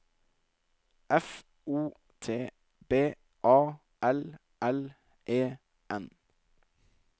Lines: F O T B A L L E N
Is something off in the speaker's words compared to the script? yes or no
no